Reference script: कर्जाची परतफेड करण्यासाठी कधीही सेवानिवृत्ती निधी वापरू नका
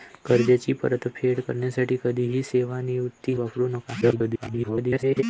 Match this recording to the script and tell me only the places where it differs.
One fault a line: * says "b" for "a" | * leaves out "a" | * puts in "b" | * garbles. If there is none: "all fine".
* leaves out "निधी"
* garbles